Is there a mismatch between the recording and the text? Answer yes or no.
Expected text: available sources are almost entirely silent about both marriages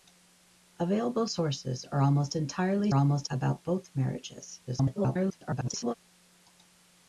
yes